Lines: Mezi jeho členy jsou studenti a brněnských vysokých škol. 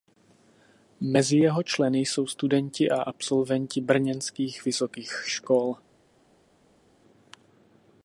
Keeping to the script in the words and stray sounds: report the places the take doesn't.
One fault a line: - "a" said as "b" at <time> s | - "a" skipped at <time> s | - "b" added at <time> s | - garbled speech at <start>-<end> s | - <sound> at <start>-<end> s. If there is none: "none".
- "absolventi" added at 3.0 s